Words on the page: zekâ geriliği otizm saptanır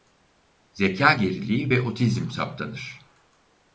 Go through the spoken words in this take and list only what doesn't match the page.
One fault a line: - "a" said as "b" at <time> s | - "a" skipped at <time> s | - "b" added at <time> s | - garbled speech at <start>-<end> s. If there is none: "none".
- "ve" added at 1.7 s